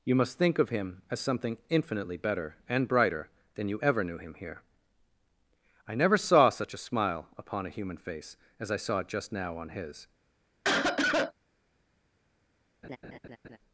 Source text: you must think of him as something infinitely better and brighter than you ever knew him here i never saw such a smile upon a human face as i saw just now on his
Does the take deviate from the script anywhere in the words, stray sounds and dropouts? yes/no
yes